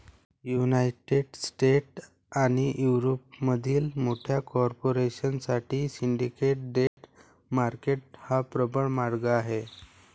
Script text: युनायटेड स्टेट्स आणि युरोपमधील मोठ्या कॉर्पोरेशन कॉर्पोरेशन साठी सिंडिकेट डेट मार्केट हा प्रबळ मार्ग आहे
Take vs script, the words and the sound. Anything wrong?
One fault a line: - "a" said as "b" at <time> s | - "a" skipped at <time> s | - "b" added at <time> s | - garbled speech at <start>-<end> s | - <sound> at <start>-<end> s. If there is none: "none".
- "कॉर्पोरेशन" skipped at 5.4 s
- dropout at 6.9-7.0 s